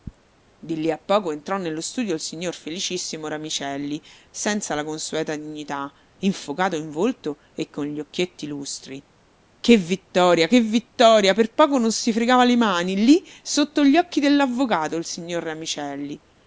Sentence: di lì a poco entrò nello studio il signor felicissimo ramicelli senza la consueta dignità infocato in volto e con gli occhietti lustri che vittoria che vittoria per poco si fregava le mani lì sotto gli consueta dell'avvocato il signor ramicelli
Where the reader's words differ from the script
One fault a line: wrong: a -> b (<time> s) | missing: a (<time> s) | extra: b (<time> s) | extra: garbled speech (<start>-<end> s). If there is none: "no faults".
extra: non (11.8 s)
wrong: consueta -> occhi (13.9 s)